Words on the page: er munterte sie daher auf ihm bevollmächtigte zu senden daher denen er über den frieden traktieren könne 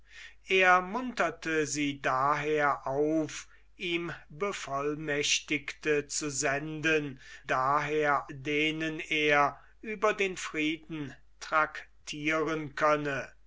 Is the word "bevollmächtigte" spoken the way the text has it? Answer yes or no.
yes